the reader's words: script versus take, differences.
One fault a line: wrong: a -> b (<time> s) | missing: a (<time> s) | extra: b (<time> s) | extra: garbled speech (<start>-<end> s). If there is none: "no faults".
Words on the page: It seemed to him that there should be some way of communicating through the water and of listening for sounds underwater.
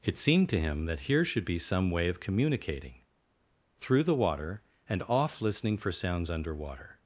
wrong: there -> here (1.0 s)
wrong: of -> off (5.0 s)